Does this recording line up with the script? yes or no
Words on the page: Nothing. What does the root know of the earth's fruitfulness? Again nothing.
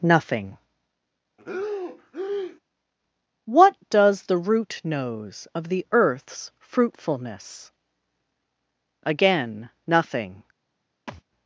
no